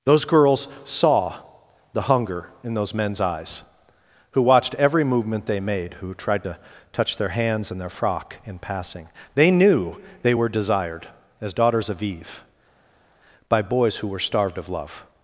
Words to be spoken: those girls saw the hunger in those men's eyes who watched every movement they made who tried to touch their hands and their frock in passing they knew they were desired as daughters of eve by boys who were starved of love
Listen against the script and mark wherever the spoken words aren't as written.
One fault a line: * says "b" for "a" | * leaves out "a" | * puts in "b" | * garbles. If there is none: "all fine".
all fine